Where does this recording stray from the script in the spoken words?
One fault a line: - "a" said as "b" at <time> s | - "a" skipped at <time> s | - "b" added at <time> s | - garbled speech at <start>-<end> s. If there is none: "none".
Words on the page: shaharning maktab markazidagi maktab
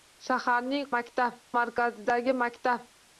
none